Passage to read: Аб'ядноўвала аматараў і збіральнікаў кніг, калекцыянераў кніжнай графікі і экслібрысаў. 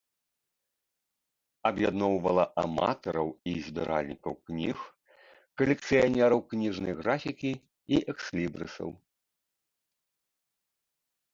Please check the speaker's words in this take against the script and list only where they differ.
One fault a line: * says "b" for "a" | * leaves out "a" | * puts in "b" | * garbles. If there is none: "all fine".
all fine